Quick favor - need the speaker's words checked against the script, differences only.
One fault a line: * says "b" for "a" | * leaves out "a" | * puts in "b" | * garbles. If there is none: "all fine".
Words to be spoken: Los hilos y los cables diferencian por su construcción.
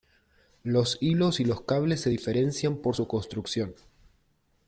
* puts in "se"